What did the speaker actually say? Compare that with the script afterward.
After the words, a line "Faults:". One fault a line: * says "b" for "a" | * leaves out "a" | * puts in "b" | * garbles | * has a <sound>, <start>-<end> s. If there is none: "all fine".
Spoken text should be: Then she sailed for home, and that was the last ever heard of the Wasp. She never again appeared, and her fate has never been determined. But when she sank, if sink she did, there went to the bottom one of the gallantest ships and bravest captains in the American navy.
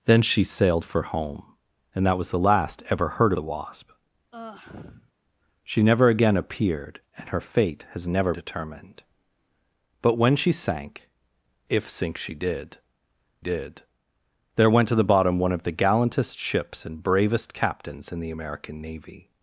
Then she sailed for home, and that was the last ever heard the Wasp. She never again appeared, and her fate has never determined. But when she sank, if sink she did did, there went to the bottom one of the gallantest ships and bravest captains in the American navy.
Faults:
* leaves out "of"
* has a sigh, 4.3-5.1 s
* leaves out "been"
* puts in "did"